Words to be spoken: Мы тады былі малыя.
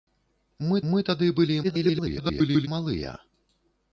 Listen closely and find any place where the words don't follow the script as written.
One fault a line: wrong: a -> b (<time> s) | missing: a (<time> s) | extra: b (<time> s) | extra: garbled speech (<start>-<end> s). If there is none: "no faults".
extra: мы (0.9 s)
extra: garbled speech (1.6-2.7 s)